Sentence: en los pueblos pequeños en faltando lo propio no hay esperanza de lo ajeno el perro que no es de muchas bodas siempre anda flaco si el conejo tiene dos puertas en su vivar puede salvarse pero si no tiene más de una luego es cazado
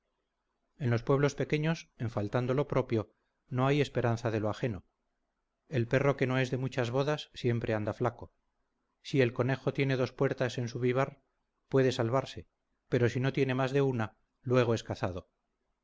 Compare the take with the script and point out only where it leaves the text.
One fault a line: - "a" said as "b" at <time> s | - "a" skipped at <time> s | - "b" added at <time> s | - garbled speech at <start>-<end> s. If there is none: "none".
none